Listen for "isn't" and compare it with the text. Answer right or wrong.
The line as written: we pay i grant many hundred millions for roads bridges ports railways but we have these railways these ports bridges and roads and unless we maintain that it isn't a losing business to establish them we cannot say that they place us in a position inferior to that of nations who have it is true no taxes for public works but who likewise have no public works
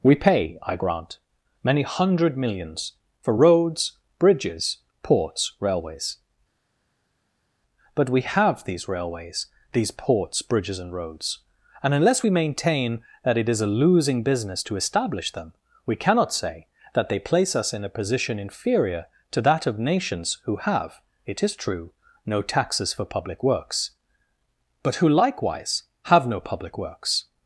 wrong